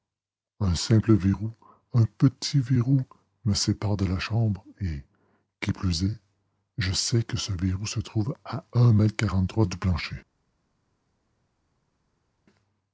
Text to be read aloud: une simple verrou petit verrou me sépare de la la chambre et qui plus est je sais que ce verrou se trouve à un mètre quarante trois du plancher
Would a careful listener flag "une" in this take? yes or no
yes